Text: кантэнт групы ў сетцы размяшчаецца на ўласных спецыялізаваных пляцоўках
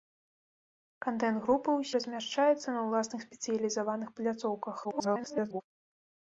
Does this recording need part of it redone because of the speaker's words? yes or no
yes